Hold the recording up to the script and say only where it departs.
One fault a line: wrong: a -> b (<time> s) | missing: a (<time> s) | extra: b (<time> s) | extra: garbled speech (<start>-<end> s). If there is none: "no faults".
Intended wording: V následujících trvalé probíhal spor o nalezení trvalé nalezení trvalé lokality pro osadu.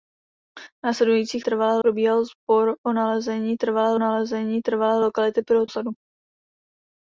no faults